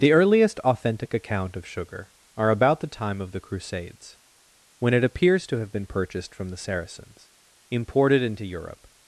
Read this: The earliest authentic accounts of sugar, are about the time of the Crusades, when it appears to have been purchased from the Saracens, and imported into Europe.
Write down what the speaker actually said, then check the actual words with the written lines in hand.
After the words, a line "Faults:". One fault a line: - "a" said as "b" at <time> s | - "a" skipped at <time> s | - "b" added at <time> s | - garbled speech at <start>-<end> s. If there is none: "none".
The earliest authentic account of sugar, are about the time of the Crusades, when it appears to have been purchased from the Saracens, imported into Europe.
Faults:
- "accounts" said as "account" at 1.1 s
- "and" skipped at 7.3 s